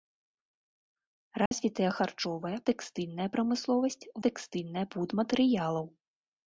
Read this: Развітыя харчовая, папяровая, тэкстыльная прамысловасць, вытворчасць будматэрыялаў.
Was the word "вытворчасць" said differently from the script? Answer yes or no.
yes